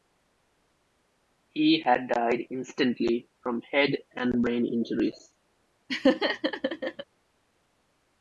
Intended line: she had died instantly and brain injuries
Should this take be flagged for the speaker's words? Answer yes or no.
yes